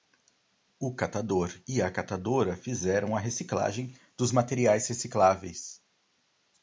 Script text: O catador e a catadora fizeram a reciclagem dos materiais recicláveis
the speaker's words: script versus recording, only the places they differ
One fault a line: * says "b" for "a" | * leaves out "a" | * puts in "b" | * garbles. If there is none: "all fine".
all fine